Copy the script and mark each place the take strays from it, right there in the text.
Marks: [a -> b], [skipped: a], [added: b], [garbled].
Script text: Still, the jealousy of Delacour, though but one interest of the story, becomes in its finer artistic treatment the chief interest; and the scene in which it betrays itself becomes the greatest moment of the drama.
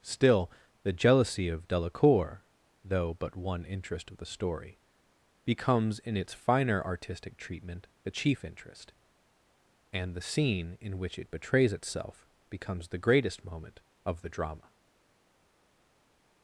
Still, the jealousy of Delacour, though but one interest of the story, becomes in its finer artistic treatment the chief interest; and the scene in which it betrays itself becomes the greatest moment of the drama.